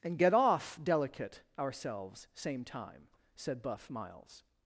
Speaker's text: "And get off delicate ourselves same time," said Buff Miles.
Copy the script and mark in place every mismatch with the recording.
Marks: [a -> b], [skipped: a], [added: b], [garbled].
"And get off delicate ourselves same time," said Buff Miles.